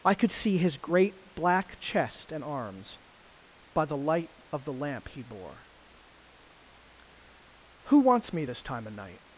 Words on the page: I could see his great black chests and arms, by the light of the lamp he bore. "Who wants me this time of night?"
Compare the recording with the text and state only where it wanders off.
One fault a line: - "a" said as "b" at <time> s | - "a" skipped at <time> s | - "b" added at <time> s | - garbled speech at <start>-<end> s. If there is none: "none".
- "chests" said as "chest" at 1.8 s